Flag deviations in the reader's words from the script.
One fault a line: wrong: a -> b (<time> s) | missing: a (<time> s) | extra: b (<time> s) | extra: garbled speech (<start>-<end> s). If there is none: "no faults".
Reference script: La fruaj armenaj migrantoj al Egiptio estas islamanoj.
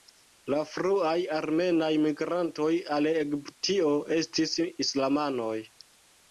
wrong: estas -> estis (4.2 s)